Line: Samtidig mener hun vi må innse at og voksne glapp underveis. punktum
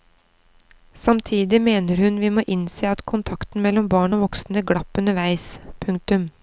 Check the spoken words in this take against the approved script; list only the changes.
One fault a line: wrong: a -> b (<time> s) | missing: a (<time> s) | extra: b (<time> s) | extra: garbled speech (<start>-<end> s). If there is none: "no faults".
extra: kontakten mellom barn (3.0 s)